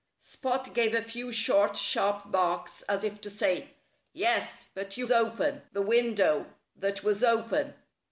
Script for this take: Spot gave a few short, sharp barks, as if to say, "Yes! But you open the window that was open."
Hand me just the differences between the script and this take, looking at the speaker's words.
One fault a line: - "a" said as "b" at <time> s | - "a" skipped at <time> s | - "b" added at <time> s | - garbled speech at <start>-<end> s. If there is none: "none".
none